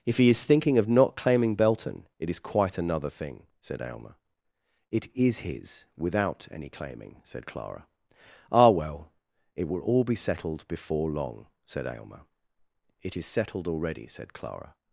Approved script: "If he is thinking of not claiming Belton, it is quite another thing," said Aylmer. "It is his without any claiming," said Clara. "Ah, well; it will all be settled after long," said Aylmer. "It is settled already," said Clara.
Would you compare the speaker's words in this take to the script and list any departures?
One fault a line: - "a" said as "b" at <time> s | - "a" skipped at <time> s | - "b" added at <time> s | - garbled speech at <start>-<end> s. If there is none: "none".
- "after" said as "before" at 10.7 s